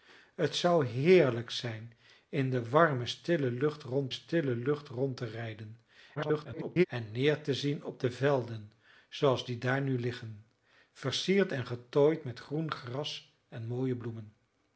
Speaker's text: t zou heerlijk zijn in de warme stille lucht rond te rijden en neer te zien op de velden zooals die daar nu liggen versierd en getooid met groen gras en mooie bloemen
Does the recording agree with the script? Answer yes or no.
no